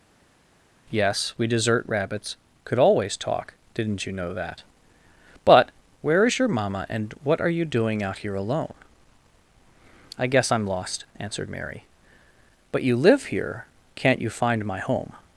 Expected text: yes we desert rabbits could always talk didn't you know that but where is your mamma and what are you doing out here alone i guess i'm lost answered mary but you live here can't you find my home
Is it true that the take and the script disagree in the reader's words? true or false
false